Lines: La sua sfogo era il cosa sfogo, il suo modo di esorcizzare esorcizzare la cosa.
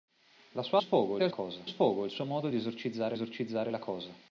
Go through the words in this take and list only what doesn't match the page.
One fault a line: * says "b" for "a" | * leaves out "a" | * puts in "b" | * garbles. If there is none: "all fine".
all fine